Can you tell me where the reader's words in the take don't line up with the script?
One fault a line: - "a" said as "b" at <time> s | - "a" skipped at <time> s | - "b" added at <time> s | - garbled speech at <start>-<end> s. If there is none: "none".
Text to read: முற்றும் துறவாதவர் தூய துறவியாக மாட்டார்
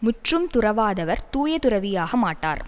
none